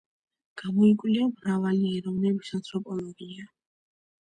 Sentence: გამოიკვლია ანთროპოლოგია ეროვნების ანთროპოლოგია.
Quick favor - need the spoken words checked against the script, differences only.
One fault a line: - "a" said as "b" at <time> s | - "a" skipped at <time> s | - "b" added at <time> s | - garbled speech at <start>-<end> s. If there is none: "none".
- "ანთროპოლოგია" said as "მრავალი" at 1.3 s